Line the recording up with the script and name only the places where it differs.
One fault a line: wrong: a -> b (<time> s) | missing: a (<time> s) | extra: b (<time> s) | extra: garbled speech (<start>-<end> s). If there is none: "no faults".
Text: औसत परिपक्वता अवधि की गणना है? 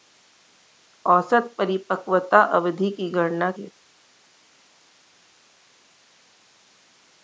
no faults